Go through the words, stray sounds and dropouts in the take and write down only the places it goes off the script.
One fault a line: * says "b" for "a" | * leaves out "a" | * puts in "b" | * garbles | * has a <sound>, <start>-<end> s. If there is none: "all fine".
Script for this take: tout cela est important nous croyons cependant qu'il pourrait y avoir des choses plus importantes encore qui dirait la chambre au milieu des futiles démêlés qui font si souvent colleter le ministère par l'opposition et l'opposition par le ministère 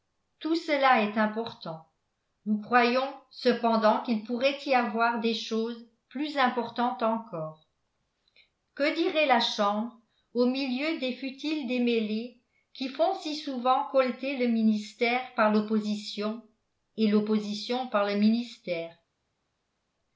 * says "que" for "qui"